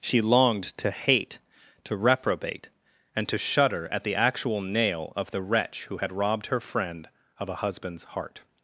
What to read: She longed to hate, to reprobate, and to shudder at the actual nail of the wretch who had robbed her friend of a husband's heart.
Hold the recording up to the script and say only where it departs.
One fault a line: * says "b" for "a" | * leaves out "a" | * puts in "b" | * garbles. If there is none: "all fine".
all fine